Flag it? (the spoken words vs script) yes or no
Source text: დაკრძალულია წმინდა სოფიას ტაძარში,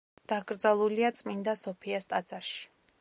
no